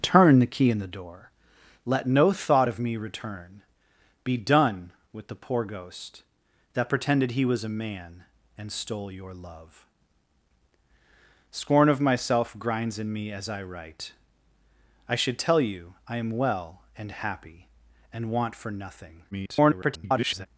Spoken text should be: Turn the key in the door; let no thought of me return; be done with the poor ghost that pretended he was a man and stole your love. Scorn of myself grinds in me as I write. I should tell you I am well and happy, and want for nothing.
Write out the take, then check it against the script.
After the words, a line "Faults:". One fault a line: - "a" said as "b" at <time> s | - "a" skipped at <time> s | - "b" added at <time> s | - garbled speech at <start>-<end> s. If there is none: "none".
Turn the key in the door; let no thought of me return; be done with the poor ghost that pretended he was a man and stole your love. Scorn of myself grinds in me as I write. I should tell you I am well and happy, and want for nothing. [garbled]
Faults:
- garbled speech at 19.3-20.5 s